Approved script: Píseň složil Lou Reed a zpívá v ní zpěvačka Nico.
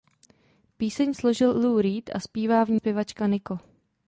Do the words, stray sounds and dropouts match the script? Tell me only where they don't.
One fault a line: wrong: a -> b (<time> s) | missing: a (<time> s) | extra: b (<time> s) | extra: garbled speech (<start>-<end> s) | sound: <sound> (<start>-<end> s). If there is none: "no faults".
no faults